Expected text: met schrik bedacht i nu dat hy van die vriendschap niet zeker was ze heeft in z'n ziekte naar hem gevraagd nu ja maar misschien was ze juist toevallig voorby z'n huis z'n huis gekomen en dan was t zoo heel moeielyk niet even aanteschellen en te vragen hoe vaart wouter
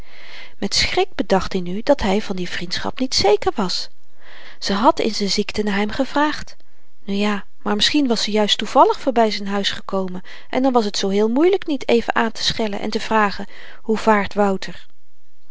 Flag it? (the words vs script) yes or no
yes